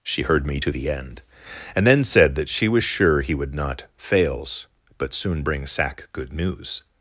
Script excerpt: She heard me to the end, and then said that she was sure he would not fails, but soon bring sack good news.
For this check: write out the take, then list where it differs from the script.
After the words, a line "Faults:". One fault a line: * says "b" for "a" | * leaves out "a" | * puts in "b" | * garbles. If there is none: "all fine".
She heard me to the end, and then said that she was sure he would not fails, but soon bring sack good news.
Faults:
all fine